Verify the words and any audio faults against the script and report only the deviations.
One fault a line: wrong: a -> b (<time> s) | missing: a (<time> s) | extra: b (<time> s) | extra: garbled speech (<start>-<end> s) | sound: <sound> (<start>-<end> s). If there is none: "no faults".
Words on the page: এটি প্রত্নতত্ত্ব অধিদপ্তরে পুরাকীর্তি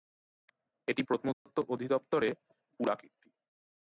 sound: dropout (1.3-1.5 s)